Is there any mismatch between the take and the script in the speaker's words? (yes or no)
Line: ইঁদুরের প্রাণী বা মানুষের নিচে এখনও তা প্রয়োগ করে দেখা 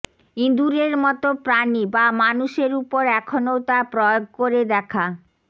yes